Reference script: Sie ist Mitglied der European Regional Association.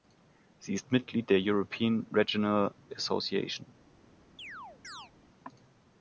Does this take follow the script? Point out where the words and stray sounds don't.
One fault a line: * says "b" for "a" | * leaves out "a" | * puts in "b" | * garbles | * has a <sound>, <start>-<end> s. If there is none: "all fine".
* has a chirp, 4.4-5.1 s